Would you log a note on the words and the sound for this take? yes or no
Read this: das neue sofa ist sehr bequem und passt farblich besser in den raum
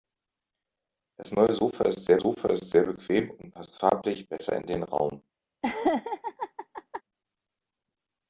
yes